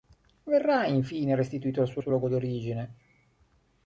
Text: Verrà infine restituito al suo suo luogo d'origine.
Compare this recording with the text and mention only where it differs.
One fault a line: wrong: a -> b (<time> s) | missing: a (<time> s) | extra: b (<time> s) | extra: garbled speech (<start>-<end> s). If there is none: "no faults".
no faults